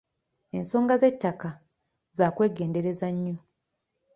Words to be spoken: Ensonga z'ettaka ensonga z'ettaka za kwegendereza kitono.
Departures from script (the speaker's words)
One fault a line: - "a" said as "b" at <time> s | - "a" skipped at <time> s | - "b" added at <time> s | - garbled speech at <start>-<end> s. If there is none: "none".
- "ensonga z'ettaka" skipped at 1.5 s
- "kitono" said as "nnyo" at 3.2 s